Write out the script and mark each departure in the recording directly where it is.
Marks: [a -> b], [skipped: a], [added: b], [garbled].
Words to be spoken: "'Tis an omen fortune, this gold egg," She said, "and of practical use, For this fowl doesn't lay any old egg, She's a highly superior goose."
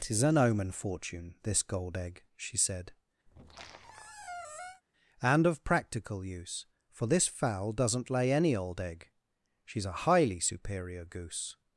"'Tis an omen fortune, this gold egg," She said, "and of practical use, For this fowl doesn't lay any old egg, She's a highly superior goose."